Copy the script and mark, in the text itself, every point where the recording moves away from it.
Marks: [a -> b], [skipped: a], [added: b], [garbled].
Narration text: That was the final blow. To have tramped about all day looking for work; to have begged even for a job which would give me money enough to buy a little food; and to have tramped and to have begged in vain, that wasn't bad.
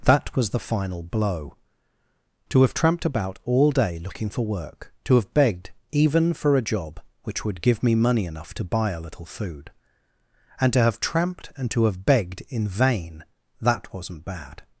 That was the final blow. To have tramped about all day looking for work; to have begged even for a job which would give me money enough to buy a little food; and to have tramped and to have begged in vain, that wasn't bad.